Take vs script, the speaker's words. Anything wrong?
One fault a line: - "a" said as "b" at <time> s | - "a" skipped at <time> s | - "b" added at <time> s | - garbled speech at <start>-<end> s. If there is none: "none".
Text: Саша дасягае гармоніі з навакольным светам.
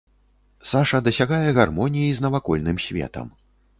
none